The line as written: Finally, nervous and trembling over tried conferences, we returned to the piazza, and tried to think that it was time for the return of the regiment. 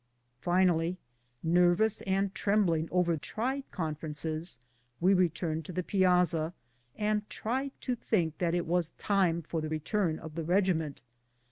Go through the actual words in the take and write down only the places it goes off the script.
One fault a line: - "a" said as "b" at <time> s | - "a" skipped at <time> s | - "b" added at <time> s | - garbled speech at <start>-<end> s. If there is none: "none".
none